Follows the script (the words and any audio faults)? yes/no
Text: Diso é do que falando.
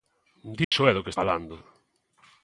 no